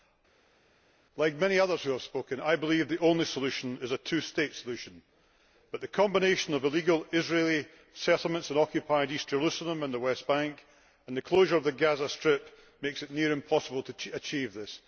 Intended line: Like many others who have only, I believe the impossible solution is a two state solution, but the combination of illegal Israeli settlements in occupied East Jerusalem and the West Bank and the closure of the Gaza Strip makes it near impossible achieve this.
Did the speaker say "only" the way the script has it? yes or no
no